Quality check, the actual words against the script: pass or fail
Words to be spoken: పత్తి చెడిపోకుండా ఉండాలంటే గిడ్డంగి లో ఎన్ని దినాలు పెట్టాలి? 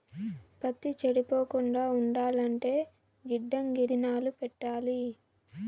fail